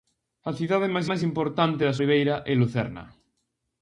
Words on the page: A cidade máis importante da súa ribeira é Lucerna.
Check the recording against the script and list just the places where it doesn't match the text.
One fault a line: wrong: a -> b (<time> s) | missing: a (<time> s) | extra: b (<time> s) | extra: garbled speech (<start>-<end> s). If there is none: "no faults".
extra: máis (1.1 s)
missing: súa (2.0 s)